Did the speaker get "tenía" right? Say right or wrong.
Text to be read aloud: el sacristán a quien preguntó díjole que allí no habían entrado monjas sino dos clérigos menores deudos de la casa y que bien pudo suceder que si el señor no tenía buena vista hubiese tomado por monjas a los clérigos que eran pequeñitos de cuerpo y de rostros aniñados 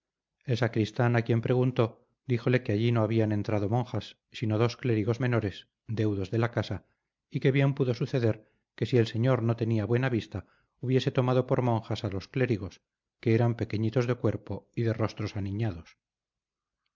right